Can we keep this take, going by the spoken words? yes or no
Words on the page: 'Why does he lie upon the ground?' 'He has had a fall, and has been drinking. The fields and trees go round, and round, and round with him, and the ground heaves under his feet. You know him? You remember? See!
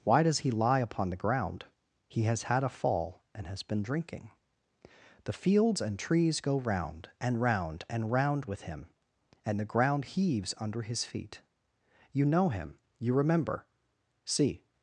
yes